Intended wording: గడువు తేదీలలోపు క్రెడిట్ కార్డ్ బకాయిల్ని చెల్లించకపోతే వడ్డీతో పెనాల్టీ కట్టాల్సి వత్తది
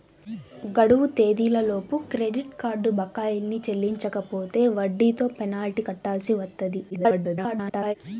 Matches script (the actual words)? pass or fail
fail